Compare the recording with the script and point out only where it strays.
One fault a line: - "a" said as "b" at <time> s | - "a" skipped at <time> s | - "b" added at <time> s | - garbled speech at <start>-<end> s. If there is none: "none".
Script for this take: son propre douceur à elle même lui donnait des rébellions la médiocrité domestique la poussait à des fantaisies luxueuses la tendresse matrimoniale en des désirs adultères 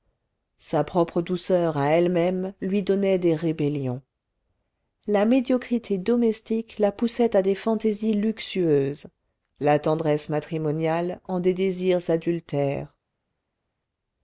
- "son" said as "sa" at 0.6 s